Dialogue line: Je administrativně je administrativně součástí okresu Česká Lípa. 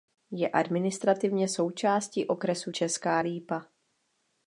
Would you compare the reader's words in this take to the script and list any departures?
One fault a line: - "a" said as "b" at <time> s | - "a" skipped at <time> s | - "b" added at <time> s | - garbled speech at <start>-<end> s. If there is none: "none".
- "je administrativně" skipped at 1.5 s